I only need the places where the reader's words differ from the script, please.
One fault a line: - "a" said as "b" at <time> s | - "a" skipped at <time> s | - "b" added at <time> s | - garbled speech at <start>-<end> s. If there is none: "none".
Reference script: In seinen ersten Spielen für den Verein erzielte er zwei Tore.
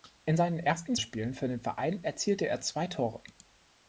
none